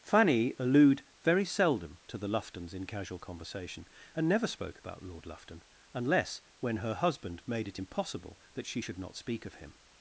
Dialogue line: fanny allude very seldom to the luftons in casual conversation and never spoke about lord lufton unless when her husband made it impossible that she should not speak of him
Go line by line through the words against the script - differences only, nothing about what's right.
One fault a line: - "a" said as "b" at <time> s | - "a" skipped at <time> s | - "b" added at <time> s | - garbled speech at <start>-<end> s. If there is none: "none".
none